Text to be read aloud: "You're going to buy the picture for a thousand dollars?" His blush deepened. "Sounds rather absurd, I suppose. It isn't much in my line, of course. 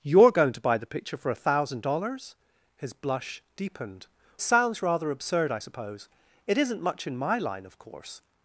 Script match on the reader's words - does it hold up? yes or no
yes